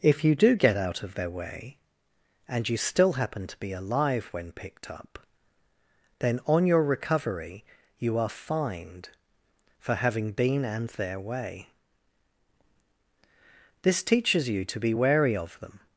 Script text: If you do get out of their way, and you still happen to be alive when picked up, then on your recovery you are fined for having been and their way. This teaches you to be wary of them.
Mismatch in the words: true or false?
false